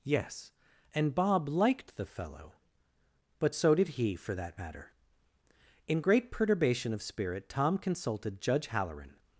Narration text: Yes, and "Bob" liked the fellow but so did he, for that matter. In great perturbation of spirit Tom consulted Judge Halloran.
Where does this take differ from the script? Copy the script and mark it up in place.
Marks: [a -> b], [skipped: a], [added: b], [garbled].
Yes, and "Bob" liked the fellow but so did he, for that matter. In great perturbation of spirit Tom consulted Judge Halloran.